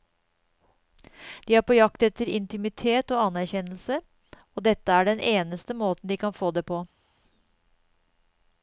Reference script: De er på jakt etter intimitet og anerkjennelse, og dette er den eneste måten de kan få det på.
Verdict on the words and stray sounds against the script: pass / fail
pass